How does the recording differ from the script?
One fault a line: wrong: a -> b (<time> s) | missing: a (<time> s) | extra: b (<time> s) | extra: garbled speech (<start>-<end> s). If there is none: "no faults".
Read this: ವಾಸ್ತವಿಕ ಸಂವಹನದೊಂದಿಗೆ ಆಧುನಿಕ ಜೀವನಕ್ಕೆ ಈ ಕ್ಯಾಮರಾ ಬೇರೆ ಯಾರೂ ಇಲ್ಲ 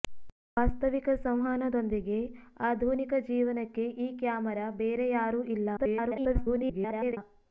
extra: garbled speech (5.8-7.2 s)